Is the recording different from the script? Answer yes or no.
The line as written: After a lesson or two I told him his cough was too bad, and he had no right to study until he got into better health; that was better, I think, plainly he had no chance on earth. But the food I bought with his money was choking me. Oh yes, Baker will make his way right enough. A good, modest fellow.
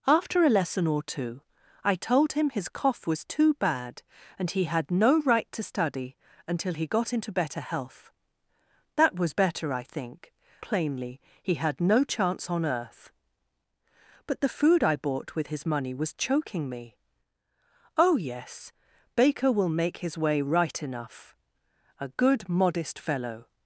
no